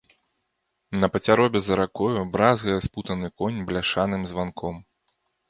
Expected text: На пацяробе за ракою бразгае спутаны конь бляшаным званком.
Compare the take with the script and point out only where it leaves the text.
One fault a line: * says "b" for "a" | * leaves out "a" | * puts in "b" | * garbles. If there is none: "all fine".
all fine